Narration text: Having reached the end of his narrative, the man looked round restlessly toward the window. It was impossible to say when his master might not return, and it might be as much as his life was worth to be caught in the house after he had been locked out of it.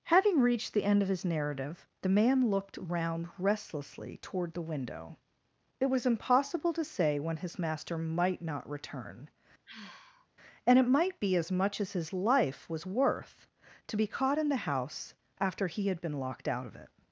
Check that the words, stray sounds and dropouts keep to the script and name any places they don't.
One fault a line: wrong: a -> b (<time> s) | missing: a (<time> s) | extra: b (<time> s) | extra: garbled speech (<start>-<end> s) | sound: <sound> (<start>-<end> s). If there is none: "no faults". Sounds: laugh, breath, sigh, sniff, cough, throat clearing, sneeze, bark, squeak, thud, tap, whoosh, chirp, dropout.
sound: sigh (9.7-10.3 s)